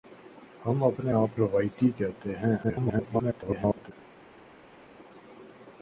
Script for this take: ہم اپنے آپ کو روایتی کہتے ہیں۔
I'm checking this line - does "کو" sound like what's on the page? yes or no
no